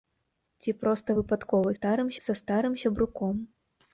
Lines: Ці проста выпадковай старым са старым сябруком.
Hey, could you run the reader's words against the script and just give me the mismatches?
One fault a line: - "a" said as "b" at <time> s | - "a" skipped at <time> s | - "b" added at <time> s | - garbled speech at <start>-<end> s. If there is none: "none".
none